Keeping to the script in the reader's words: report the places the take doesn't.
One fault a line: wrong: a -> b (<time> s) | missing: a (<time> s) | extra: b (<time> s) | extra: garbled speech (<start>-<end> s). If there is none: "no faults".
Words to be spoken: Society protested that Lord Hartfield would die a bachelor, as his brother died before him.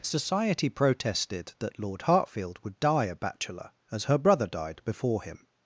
wrong: his -> her (4.0 s)